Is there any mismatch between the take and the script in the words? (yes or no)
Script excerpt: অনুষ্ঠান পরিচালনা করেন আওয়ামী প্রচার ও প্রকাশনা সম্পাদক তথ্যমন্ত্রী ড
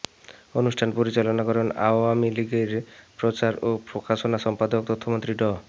yes